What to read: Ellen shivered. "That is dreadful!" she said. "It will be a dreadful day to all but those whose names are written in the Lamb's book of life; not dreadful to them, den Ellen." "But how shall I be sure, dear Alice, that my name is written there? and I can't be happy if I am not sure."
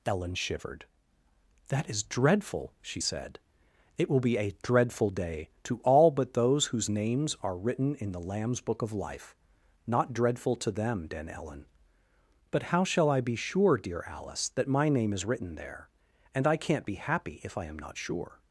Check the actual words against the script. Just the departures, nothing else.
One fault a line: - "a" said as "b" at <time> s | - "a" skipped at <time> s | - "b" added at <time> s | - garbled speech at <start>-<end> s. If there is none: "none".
none